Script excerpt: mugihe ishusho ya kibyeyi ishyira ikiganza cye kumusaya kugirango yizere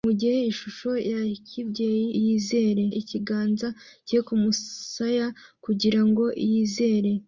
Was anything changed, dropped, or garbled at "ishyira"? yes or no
yes